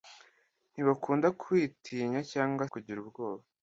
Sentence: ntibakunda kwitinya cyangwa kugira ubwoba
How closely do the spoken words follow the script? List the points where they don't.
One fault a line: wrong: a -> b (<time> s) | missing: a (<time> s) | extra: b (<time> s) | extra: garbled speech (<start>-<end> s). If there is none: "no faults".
no faults